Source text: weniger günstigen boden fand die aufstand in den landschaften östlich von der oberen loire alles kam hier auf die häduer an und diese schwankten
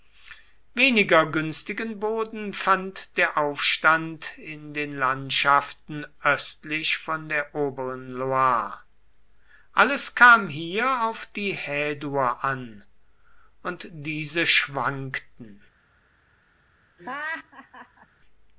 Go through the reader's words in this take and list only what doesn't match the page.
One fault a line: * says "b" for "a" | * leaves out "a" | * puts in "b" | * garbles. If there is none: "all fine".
* says "der" for "die"